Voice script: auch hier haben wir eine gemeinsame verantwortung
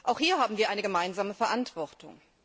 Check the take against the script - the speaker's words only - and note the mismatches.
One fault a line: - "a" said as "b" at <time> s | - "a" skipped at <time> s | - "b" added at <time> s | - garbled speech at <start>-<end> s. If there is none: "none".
none